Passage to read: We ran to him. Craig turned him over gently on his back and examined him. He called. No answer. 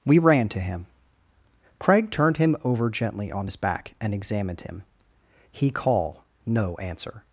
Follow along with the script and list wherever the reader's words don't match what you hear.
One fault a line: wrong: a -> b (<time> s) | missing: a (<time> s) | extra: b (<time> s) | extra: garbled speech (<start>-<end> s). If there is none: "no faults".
wrong: called -> call (5.7 s)